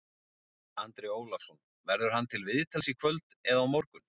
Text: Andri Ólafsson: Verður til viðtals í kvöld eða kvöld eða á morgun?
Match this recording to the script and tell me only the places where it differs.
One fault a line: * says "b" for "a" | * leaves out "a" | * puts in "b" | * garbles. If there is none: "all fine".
* puts in "hann"
* leaves out "kvöld eða"